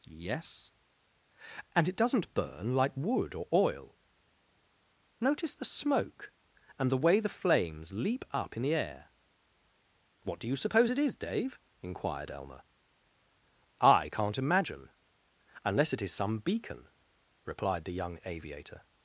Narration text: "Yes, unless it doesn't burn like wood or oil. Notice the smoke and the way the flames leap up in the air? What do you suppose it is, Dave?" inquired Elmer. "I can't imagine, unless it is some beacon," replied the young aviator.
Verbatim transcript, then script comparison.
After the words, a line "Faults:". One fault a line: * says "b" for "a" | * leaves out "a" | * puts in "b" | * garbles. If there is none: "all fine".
"Yes, and it doesn't burn like wood or oil. Notice the smoke and the way the flames leap up in the air? What do you suppose it is, Dave?" inquired Elmer. "I can't imagine, unless it is some beacon," replied the young aviator.
Faults:
* says "and" for "unless"